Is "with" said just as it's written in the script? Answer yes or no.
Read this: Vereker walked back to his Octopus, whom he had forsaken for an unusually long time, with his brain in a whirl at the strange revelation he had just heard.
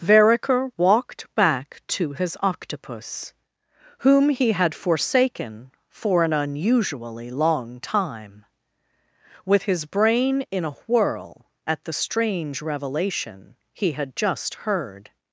yes